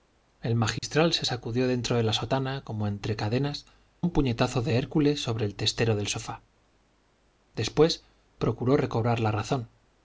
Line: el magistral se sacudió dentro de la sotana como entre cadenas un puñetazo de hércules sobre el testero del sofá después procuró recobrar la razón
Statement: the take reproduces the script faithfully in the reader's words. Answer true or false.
true